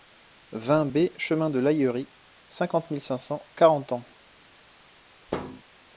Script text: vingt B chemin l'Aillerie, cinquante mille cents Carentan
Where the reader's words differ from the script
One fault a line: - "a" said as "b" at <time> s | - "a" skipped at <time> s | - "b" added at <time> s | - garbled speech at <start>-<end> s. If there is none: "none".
- "de" added at 1.5 s
- "cinq" added at 3.0 s